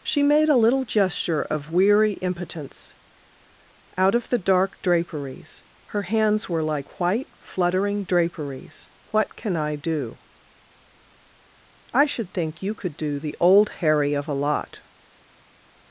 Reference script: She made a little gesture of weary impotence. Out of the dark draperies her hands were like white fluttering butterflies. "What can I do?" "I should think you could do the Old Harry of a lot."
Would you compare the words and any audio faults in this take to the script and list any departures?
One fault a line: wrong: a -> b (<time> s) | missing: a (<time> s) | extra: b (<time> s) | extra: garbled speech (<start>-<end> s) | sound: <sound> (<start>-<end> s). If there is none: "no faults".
wrong: butterflies -> draperies (8.1 s)